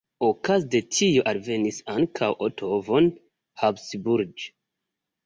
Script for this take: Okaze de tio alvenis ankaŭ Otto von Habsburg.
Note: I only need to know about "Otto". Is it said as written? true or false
true